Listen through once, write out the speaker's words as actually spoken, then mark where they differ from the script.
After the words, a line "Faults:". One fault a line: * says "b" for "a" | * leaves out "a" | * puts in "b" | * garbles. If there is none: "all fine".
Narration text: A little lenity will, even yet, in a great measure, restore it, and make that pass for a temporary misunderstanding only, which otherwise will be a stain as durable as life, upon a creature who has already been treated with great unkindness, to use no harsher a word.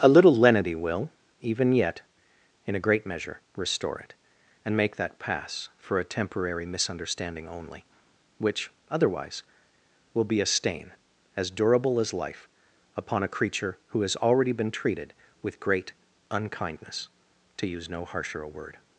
A little lenity will, even yet, in a great measure, restore it, and make that pass for a temporary misunderstanding only, which otherwise will be a stain as durable as life, upon a creature who has already been treated with great unkindness, to use no harsher a word.
Faults:
all fine